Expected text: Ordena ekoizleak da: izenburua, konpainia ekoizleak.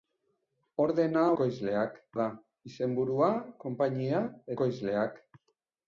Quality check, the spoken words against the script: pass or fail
pass